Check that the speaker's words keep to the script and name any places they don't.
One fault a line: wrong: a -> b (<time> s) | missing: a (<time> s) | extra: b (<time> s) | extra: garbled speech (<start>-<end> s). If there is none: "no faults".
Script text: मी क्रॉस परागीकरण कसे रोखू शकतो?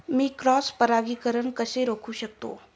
no faults